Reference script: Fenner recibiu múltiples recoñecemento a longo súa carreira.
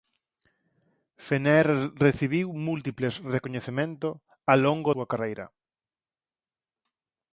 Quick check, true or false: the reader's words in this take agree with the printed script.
true